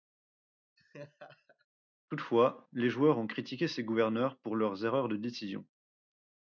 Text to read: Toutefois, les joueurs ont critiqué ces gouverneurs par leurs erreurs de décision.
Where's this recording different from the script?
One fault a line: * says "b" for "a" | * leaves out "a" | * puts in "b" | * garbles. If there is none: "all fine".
* says "pour" for "par"